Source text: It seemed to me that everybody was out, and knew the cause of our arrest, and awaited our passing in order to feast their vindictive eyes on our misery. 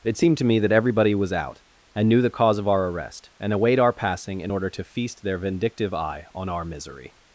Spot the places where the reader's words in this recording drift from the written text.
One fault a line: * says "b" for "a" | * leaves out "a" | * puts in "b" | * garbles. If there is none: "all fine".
* says "await" for "awaited"
* says "eye" for "eyes"